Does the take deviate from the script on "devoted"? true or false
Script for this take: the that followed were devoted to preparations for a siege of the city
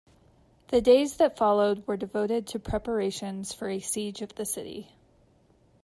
false